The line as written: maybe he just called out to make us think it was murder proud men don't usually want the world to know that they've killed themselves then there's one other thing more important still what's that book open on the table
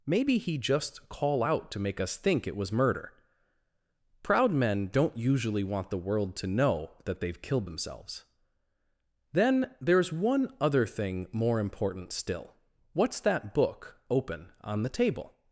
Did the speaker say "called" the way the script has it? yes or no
no